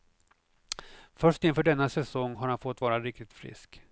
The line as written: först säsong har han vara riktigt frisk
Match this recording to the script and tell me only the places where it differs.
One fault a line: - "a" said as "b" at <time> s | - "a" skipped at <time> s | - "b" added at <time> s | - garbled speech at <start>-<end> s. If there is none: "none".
- "inför denna" added at 1.4 s
- "fått" added at 2.6 s